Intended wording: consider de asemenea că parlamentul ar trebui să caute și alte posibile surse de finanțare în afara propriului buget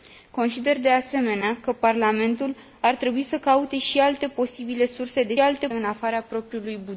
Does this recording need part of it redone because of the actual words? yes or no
yes